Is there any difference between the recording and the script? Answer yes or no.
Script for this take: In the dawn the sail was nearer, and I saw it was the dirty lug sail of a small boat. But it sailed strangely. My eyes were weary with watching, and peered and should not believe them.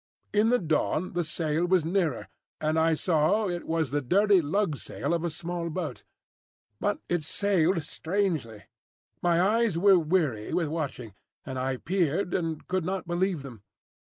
yes